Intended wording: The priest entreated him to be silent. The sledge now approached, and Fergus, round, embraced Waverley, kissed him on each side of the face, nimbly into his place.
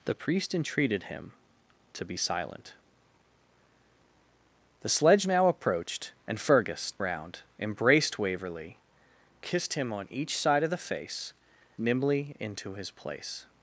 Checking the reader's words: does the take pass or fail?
pass